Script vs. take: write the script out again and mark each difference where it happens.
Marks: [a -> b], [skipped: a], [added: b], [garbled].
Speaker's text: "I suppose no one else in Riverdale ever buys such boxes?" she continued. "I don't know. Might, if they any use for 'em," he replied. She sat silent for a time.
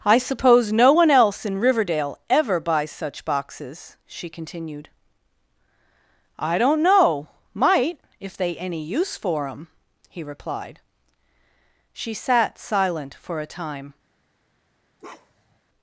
"I suppose no one else in Riverdale ever buys such boxes?" she continued. "I don't know. Might, if they any use for 'em," he replied. She sat silent for a time.